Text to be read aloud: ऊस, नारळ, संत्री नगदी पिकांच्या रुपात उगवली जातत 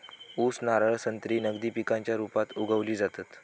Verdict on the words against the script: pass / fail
pass